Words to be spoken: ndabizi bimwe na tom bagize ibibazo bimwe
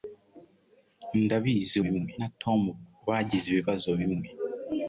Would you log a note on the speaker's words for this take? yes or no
no